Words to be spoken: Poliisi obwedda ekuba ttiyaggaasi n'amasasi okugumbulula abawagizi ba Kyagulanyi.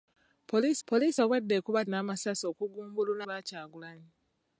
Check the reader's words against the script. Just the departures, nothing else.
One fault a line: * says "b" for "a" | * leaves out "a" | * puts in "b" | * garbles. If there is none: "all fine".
* puts in "poliisi"
* leaves out "ttiyaggaasi"
* leaves out "abawagizi"